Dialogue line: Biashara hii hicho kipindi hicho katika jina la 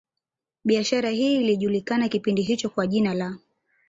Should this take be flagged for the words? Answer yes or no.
yes